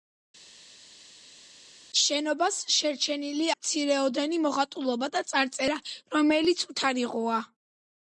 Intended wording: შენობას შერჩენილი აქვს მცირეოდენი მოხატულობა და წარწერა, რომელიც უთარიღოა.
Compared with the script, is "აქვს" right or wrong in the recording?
wrong